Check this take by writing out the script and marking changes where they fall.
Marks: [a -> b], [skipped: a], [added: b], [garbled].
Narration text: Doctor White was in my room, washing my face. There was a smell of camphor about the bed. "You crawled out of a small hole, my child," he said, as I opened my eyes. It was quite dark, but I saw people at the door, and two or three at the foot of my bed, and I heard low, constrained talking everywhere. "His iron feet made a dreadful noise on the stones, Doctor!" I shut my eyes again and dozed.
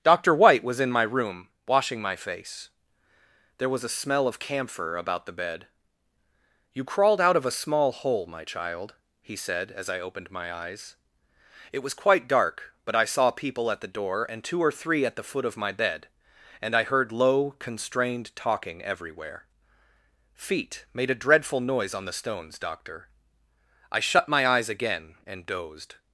Doctor White was in my room, washing my face. There was a smell of camphor about the bed. "You crawled out of a small hole, my child," he said, as I opened my eyes. It was quite dark, but I saw people at the door, and two or three at the foot of my bed, and I heard low, constrained talking everywhere. [skipped: "His iron] feet made a dreadful noise on the stones, Doctor!" I shut my eyes again and dozed.